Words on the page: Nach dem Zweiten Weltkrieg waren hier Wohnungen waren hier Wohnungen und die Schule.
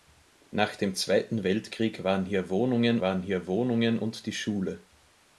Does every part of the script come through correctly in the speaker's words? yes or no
yes